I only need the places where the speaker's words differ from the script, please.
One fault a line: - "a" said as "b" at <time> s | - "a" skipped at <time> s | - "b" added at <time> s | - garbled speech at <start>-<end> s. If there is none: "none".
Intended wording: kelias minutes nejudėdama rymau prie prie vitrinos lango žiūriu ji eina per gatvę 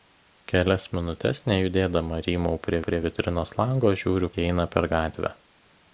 none